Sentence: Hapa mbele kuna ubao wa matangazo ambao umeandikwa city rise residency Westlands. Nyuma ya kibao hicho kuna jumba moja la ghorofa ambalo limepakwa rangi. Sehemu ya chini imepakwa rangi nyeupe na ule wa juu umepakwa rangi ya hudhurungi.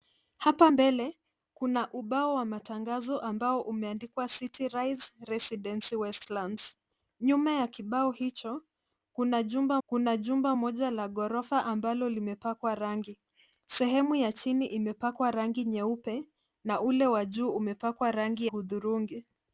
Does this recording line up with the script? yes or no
no